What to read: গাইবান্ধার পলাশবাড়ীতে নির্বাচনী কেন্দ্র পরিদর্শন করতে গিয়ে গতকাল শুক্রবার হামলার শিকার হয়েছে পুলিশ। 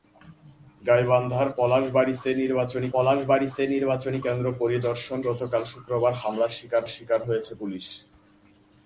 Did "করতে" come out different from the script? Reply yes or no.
yes